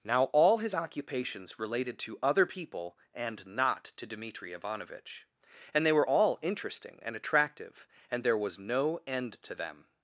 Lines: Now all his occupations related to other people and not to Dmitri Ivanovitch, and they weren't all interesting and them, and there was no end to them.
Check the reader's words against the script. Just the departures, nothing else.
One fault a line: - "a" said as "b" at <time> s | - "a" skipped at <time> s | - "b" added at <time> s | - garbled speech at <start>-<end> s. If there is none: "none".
- "weren't" said as "were" at 5.9 s
- "them" said as "attractive" at 7.1 s